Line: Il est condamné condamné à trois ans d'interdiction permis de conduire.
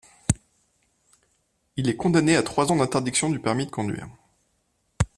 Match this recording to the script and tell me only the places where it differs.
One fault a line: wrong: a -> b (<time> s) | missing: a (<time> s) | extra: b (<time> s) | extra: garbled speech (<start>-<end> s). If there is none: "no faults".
missing: condamné (2.3 s)
extra: du (3.3 s)